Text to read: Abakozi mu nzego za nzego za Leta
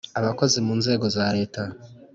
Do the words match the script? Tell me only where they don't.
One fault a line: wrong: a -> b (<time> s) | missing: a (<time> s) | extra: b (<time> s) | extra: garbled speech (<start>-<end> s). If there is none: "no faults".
missing: nzego za (1.3 s)